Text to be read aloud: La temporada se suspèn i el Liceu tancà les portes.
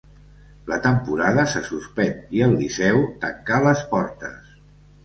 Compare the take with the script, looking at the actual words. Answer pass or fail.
pass